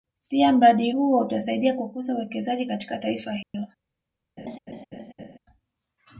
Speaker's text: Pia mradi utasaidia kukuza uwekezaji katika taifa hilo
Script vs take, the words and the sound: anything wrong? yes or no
yes